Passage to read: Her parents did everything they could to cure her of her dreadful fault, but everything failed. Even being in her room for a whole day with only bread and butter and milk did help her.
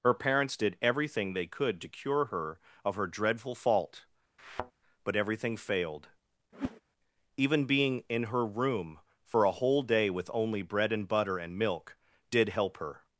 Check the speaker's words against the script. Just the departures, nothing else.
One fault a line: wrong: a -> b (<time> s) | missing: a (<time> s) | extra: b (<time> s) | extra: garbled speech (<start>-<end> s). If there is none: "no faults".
no faults